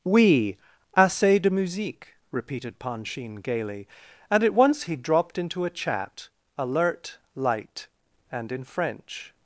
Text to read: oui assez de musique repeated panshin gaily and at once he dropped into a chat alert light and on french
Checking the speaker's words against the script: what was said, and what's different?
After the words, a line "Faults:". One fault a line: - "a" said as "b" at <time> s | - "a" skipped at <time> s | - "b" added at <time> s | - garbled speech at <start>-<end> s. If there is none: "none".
oui assez de musique repeated panshin gaily and at once he dropped into a chat alert light and in french
Faults:
- "on" said as "in" at 8.5 s